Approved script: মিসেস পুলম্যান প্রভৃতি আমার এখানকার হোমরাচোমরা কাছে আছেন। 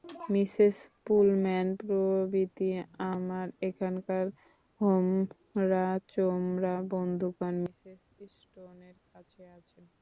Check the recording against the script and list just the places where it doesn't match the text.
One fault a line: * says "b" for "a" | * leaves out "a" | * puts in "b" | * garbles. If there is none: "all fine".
* puts in "বন্ধুগণ মিসেস স্টোনের"